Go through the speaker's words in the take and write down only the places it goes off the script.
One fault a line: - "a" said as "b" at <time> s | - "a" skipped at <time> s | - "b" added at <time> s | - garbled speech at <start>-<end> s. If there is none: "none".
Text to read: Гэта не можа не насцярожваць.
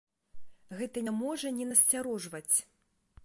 none